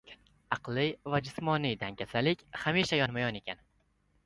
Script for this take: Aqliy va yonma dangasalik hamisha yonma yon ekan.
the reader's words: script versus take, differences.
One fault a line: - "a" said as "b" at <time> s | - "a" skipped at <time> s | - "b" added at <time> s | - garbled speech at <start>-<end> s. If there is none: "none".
- "yonma" said as "jismoniy" at 1.3 s